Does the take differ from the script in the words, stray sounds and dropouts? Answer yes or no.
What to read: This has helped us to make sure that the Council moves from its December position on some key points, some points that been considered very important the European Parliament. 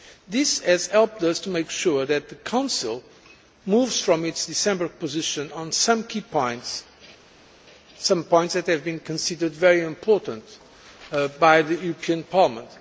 yes